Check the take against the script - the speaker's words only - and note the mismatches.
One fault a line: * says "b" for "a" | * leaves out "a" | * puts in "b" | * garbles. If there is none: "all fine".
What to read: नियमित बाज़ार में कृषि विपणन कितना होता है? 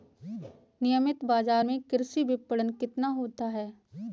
all fine